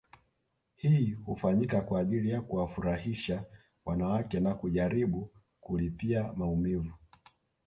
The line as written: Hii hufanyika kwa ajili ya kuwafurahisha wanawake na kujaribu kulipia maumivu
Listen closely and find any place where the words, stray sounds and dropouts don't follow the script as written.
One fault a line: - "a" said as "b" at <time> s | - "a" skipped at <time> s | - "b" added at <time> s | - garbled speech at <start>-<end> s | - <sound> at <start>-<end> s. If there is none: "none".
none